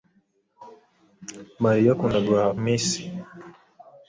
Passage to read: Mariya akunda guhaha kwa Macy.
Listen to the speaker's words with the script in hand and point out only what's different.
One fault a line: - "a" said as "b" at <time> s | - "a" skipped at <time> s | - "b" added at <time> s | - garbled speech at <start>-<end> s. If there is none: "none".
- "kwa" skipped at 2.5 s